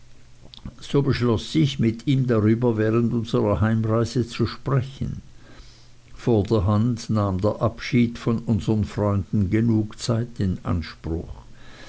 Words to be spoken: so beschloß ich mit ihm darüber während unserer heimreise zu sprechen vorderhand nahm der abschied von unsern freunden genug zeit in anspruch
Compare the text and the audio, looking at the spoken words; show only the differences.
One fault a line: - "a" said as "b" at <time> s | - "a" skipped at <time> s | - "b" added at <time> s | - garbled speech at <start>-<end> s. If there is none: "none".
none